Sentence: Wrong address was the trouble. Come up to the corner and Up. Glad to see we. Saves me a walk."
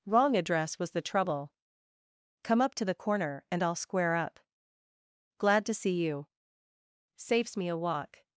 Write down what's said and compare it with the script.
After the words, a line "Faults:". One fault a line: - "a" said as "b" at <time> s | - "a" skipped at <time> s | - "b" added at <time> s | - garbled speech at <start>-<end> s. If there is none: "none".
Wrong address was the trouble. Come up to the corner and I'll square up. Glad to see you. Saves me a walk."
Faults:
- "I'll square" added at 3.6 s
- "we" said as "you" at 6.0 s